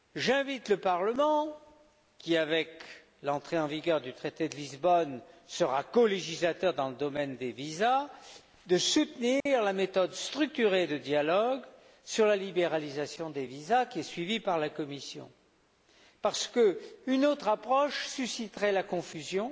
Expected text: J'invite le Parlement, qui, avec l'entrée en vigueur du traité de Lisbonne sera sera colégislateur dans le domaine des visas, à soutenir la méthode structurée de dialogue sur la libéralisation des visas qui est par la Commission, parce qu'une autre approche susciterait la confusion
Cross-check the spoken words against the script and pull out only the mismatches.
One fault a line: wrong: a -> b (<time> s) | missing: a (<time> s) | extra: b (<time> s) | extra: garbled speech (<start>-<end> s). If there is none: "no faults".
missing: sera (5.8 s)
extra: suivie (14.0 s)